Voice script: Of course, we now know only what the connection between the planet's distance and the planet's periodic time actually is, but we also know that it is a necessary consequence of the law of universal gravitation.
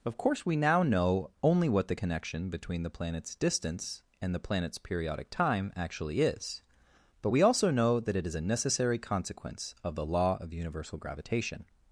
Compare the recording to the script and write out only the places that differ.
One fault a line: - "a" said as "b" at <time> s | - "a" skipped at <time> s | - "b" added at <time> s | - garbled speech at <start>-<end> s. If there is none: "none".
none